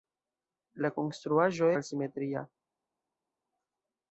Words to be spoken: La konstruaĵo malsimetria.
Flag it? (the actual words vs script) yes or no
no